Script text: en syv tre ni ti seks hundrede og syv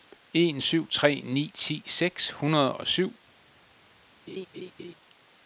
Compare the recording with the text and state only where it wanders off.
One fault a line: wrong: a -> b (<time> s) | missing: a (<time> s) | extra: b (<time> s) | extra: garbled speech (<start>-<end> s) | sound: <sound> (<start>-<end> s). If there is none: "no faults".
sound: laugh (4.3-4.9 s)